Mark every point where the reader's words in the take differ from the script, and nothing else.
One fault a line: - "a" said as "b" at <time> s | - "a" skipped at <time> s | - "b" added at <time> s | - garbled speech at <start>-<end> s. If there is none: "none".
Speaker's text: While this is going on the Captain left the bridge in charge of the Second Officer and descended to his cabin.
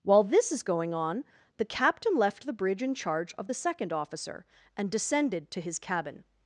none